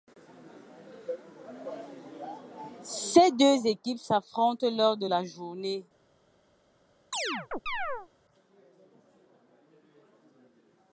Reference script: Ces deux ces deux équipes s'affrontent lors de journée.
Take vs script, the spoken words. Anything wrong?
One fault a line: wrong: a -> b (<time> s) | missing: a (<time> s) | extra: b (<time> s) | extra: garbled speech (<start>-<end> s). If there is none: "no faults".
missing: ces deux (3.7 s)
extra: la (5.1 s)